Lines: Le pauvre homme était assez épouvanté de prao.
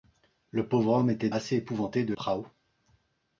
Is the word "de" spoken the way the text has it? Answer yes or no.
yes